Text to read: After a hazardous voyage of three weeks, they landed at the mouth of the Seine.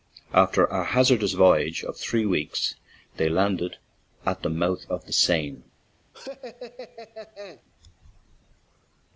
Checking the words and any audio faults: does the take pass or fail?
fail